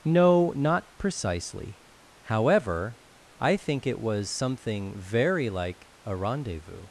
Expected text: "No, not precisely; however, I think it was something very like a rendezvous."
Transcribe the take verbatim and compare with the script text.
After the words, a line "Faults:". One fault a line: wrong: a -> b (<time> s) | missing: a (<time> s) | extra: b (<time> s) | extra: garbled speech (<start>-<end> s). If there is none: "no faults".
"No, not precisely; however, I think it was something very like a rendezvous."
Faults:
no faults